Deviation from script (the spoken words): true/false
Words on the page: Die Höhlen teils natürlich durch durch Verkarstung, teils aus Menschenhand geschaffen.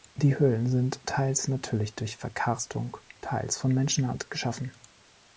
true